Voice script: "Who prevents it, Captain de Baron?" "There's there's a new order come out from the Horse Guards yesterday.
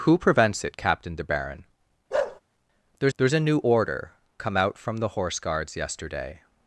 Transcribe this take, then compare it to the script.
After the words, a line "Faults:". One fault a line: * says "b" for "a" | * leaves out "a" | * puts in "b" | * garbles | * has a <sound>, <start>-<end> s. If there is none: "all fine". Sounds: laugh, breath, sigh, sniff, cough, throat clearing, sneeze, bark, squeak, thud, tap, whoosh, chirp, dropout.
"Who prevents it, Captain de Baron?" "There's there's a new order come out from the Horse Guards yesterday.
Faults:
* has a bark, 2.1-2.4 s